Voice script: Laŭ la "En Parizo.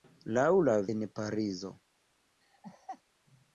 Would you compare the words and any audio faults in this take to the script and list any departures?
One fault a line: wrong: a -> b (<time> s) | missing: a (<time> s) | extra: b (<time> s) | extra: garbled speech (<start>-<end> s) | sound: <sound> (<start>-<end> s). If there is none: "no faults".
sound: laugh (2.4-3.0 s)